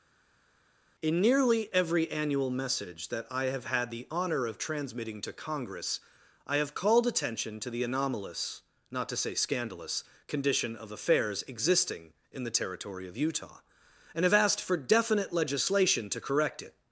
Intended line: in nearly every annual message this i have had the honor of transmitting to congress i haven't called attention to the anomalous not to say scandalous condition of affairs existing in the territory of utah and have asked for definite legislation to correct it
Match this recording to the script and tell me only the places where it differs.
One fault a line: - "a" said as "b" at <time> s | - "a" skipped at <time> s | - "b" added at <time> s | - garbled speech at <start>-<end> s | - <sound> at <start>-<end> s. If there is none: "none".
- "this" said as "that" at 3.1 s
- "haven't" said as "have" at 6.6 s